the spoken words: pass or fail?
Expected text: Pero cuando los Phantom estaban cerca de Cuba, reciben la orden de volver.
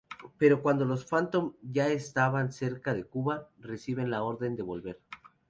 fail